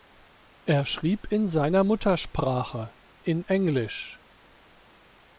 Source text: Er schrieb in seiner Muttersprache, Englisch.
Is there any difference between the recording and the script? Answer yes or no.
yes